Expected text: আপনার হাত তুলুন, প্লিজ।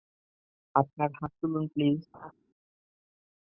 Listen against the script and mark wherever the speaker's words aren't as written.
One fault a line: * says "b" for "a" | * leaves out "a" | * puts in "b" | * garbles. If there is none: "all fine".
all fine